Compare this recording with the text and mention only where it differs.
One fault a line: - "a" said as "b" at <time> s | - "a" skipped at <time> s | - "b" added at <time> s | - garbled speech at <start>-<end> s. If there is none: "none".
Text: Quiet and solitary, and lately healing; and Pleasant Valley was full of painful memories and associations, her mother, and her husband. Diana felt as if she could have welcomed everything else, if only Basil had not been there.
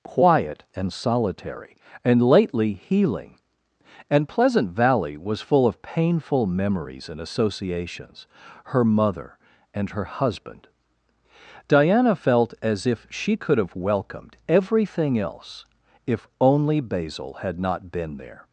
none